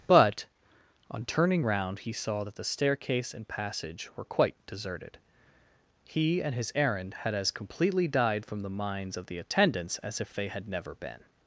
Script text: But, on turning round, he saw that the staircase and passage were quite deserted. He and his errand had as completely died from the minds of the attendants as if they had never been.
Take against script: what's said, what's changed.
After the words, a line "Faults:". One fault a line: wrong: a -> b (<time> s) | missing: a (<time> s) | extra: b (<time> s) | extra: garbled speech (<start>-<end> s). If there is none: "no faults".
But, on turning round, he saw that the staircase and passage were quite deserted. He and his errand had as completely died from the minds of the attendants as if they had never been.
Faults:
no faults